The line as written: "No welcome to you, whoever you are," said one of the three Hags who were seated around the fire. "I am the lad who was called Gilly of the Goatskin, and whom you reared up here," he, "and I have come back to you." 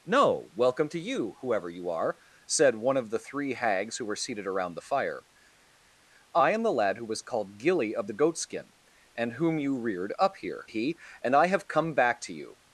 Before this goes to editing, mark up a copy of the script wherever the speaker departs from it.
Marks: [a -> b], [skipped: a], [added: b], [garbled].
"No welcome to you, whoever you are," said one of the three Hags who were seated around the fire. "I am the lad who was called Gilly of the Goatskin, and whom you reared up here," he, "and I have come back to you."